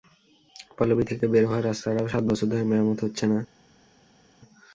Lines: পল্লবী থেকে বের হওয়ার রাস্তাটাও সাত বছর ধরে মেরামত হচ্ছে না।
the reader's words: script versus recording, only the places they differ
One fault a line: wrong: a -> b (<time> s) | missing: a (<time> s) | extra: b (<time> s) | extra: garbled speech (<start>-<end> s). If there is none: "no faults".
no faults